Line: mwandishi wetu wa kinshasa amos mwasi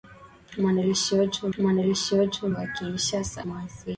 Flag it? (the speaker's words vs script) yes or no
yes